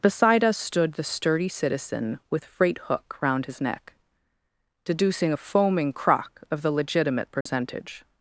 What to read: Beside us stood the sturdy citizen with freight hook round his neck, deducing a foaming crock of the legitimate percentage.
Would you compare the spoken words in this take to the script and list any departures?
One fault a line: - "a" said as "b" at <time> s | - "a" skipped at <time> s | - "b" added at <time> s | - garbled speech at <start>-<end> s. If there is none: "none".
none